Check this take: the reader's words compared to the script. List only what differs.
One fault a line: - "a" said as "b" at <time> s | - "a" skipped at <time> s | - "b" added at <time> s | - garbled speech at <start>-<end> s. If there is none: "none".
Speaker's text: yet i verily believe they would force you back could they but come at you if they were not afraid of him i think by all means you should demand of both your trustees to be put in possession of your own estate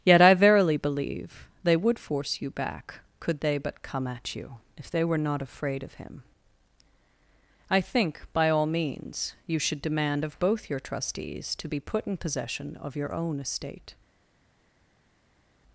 none